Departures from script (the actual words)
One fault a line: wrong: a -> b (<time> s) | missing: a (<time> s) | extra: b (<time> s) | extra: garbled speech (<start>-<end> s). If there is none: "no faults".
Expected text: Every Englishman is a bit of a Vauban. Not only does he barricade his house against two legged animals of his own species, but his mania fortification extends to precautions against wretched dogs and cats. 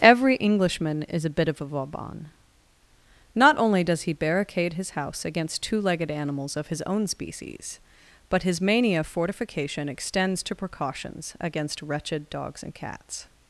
no faults